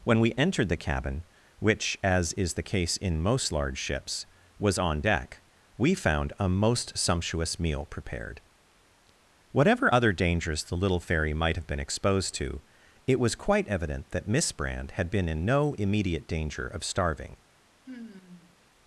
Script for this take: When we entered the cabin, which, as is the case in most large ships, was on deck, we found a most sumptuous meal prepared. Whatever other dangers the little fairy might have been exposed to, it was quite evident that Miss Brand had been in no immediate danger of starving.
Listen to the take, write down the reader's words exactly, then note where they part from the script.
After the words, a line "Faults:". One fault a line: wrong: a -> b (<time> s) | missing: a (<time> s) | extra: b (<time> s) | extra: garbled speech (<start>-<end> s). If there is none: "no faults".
When we entered the cabin, which, as is the case in most large ships, was on deck, we found a most sumptuous meal prepared. Whatever other dangers the little fairy might have been exposed to, it was quite evident that Miss Brand had been in no immediate danger of starving.
Faults:
no faults